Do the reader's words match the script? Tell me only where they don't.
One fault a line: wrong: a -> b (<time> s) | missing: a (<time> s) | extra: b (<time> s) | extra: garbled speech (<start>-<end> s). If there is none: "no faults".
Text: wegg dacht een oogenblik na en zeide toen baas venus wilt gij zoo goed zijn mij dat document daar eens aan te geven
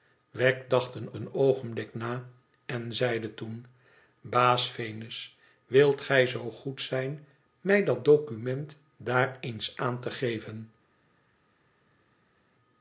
extra: een (1.1 s)